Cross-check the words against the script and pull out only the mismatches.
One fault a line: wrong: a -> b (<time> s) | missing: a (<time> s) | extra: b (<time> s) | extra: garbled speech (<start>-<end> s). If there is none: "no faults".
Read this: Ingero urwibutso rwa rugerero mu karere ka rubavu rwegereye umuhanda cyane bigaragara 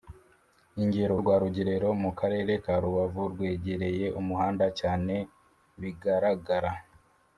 missing: urwibutso (1.1 s)